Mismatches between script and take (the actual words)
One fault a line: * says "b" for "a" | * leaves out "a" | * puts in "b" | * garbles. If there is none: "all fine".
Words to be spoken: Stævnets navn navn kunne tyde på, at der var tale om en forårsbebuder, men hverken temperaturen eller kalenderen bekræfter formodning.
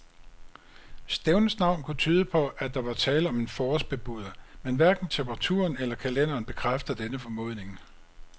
* leaves out "navn"
* puts in "denne"